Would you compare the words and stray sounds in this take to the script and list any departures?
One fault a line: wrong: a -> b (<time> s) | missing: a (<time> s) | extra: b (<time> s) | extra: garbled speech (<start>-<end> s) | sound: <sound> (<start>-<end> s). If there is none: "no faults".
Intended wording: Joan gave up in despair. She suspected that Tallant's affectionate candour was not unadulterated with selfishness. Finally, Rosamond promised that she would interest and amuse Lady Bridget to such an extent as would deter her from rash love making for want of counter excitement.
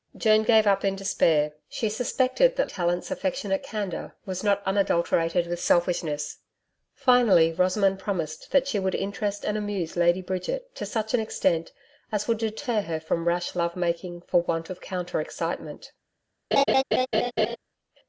sound: laugh (16.5-17.6 s)